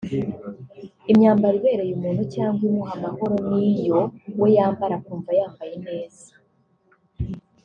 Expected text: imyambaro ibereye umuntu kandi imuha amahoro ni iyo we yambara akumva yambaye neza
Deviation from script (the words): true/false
true